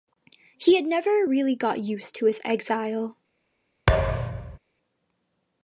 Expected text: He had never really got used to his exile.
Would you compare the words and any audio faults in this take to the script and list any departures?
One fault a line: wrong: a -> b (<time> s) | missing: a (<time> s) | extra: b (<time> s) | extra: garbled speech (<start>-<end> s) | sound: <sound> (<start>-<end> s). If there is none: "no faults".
sound: thud (3.9-4.6 s)